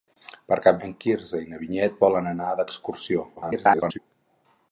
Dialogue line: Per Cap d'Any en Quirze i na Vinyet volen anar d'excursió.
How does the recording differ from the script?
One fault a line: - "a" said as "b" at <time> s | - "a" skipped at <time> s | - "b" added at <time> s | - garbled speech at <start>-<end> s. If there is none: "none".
- "d'Any" skipped at 0.8 s
- garbled speech at 3.4-4.0 s